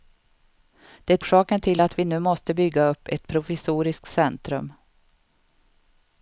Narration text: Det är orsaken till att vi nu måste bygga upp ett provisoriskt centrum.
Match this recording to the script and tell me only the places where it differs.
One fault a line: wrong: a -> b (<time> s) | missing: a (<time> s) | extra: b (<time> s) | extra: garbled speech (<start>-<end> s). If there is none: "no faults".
missing: är (1.2 s)